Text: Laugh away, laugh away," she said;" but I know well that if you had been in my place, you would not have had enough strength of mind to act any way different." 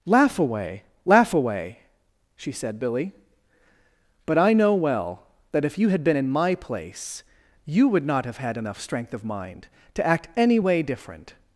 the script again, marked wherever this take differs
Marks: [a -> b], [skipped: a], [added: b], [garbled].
Laugh away, laugh away," she said;" [added: billy] but I know well that if you had been in my place, you would not have had enough strength of mind to act any way different."